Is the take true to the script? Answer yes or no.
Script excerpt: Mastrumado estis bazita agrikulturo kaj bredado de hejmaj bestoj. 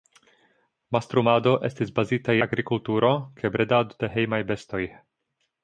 yes